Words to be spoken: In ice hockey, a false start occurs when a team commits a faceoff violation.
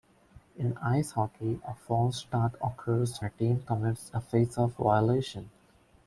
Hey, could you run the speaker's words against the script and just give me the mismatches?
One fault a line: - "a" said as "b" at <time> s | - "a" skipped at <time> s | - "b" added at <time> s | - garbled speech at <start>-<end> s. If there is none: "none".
- "when" skipped at 3.2 s